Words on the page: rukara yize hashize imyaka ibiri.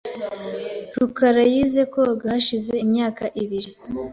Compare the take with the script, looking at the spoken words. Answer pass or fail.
fail